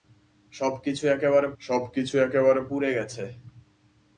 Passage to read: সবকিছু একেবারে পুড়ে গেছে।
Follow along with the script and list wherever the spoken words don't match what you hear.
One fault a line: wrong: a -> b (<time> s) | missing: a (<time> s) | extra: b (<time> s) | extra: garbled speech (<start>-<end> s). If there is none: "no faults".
extra: সবকিছু একেবারে (1.6 s)